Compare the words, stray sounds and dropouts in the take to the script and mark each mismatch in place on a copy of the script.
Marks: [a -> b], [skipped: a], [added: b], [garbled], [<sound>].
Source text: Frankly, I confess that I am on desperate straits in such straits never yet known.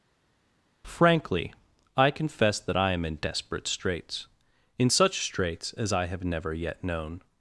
Frankly, I confess that I am [on -> in] desperate straits in such straits [added: as I have] never yet known.